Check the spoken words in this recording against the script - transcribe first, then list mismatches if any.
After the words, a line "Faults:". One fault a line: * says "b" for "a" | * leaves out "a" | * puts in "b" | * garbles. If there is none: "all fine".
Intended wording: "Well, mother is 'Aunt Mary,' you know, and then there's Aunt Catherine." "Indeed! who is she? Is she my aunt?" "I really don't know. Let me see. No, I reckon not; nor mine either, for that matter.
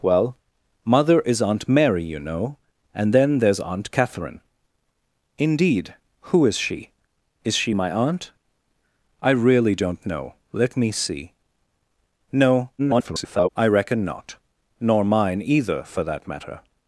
"Well, mother is 'Aunt Mary,' you know, and then there's Aunt Catherine." "Indeed! who is she? Is she my aunt?" "I really don't know. Let me see. No, [garbled] I reckon not; nor mine either, for that matter.
Faults:
* garbles